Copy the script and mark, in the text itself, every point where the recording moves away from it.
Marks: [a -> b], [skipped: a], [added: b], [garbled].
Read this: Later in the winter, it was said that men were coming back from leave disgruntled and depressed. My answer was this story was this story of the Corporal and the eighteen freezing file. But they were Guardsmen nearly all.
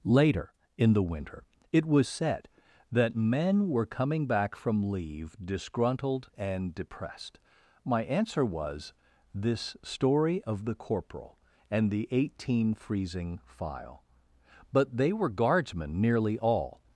Later in the winter, it was said that men were coming back from leave disgruntled and depressed. My answer was this story [skipped: was this story] of the Corporal and the eighteen freezing file. But they were Guardsmen nearly all.